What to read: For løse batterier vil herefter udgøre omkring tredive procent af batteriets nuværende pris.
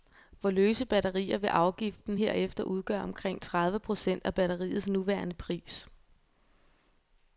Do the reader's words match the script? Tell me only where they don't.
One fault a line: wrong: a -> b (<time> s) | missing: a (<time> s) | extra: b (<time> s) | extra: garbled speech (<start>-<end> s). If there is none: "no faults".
extra: afgiften (1.5 s)